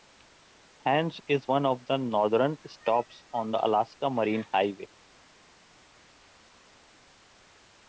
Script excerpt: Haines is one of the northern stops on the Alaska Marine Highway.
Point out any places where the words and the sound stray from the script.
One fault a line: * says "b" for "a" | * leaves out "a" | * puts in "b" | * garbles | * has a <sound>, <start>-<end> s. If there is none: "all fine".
all fine